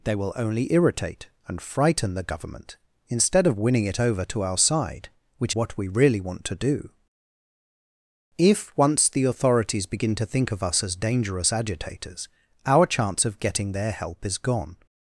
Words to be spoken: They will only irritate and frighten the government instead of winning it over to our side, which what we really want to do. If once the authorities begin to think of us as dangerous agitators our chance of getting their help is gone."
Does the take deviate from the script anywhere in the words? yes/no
no